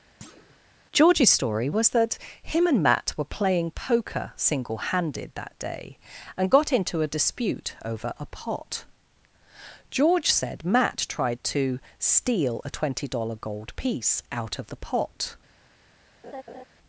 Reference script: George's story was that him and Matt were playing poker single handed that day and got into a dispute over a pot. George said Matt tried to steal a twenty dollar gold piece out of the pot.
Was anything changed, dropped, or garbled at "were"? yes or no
no